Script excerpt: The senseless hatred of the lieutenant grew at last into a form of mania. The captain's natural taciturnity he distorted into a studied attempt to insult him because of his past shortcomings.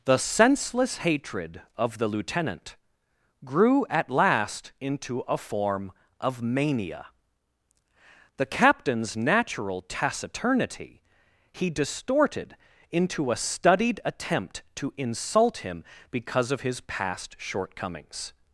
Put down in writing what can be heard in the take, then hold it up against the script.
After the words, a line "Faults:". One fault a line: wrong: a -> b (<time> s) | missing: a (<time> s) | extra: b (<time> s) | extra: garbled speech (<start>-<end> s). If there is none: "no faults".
The senseless hatred of the lieutenant grew at last into a form of mania. The captain's natural taciturnity he distorted into a studied attempt to insult him because of his past shortcomings.
Faults:
no faults